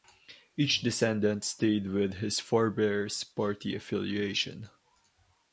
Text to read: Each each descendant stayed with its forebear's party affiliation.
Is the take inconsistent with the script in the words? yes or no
yes